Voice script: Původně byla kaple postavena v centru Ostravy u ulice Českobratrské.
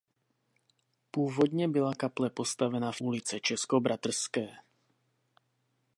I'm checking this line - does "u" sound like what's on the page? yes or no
no